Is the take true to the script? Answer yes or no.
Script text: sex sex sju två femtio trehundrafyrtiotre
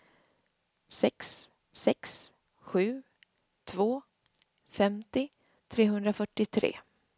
yes